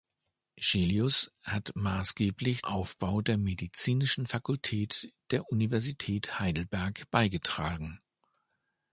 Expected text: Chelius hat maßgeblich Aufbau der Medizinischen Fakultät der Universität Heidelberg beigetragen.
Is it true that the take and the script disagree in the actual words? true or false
false